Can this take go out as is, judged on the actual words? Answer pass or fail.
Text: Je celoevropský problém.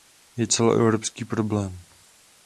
pass